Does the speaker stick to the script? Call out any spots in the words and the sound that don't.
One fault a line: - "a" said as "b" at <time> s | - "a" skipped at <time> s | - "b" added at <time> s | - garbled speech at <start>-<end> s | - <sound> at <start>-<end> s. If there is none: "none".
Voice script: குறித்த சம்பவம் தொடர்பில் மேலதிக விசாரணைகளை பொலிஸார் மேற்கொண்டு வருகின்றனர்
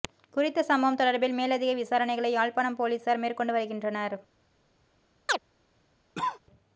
- "யாழ்ப்பாணம்" added at 2.3 s
- chirp at 5.3-5.4 s
- cough at 6.1-6.4 s